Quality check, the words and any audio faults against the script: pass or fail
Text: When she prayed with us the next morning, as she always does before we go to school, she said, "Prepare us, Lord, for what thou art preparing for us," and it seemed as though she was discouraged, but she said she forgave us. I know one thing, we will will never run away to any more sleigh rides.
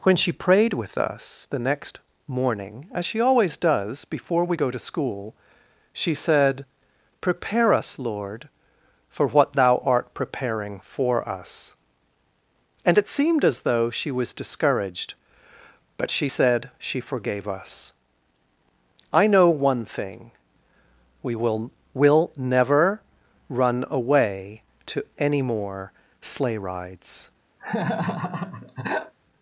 fail